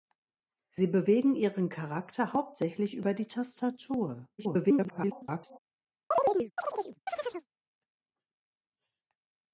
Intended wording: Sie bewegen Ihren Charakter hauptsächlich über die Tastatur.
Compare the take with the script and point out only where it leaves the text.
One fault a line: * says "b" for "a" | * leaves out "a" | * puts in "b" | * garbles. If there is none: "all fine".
* garbles